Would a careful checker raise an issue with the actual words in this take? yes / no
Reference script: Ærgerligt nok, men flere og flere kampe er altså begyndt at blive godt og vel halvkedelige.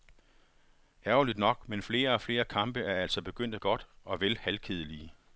yes